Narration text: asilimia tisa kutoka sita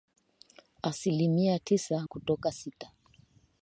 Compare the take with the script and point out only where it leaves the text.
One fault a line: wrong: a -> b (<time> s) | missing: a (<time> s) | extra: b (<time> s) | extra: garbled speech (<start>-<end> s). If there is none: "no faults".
no faults